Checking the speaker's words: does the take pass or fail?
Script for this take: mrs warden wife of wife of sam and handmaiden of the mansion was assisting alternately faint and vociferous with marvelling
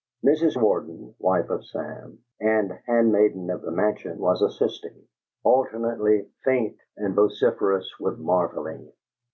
fail